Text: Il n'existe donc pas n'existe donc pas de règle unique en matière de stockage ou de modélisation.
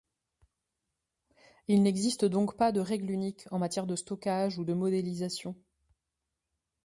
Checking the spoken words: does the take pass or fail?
fail